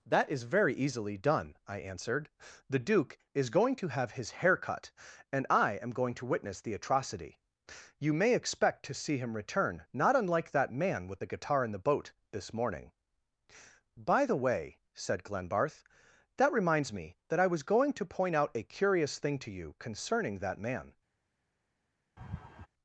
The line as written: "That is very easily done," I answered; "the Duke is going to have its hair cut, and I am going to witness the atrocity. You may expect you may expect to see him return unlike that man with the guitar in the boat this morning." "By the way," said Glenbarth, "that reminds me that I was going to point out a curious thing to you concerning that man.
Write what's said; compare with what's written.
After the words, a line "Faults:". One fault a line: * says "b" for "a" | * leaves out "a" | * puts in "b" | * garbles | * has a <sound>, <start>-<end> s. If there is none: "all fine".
"That is very easily done," I answered; "the Duke is going to have his hair cut, and I am going to witness the atrocity. You may expect to see him return not unlike that man with the guitar in the boat this morning." "By the way," said Glenbarth, "that reminds me that I was going to point out a curious thing to you concerning that man.
Faults:
* says "his" for "its"
* leaves out "you may expect"
* puts in "not"
* has a laugh, 22.2-22.7 s